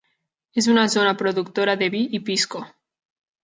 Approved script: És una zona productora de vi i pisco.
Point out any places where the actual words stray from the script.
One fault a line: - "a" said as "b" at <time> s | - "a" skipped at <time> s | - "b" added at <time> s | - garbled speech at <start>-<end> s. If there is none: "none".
none